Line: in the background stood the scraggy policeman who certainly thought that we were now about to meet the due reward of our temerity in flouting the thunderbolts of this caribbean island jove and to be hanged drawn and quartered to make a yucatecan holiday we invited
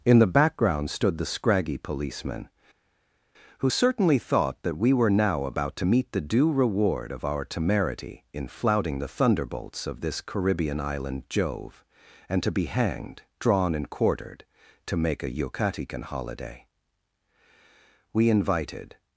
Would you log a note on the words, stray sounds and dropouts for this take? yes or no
no